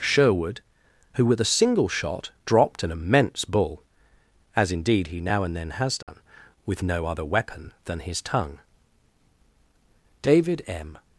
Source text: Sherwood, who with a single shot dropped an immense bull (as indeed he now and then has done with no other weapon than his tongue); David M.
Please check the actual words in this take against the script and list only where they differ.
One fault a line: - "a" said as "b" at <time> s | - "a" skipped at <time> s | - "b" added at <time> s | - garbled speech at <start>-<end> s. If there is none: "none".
none